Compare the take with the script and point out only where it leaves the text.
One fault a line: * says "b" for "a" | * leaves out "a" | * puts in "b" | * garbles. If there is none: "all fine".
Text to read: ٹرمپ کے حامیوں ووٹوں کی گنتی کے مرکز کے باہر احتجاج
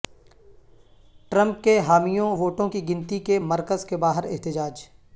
all fine